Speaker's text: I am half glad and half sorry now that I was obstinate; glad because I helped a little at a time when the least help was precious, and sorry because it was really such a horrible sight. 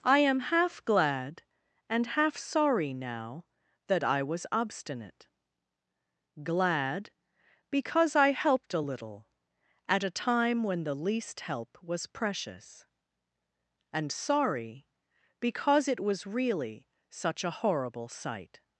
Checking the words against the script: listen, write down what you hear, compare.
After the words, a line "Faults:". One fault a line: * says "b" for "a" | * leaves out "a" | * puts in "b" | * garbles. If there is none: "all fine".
I am half glad and half sorry now that I was obstinate; glad because I helped a little at a time when the least help was precious, and sorry because it was really such a horrible sight.
Faults:
all fine